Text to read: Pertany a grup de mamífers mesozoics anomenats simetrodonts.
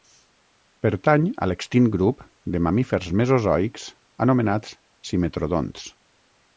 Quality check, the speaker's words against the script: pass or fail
fail